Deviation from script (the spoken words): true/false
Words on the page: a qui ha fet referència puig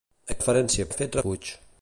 true